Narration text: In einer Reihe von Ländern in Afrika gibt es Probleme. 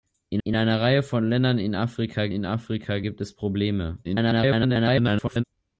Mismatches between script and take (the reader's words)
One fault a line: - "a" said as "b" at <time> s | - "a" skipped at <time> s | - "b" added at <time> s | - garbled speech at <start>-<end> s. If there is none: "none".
- "in" added at 0.4 s
- "in Afrika" added at 2.3 s
- garbled speech at 4.0-5.4 s